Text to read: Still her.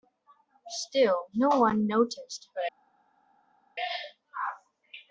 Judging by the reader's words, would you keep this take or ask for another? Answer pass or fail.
fail